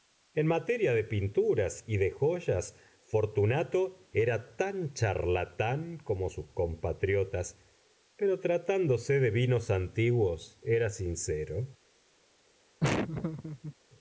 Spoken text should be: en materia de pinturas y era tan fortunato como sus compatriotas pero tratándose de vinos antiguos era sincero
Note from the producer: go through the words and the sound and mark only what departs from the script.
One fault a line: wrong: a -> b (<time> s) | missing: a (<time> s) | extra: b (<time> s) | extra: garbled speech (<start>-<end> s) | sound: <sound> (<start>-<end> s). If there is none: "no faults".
extra: de joyas fortunato (2.0 s)
wrong: fortunato -> charlatán (4.9 s)
sound: laugh (12.8-13.7 s)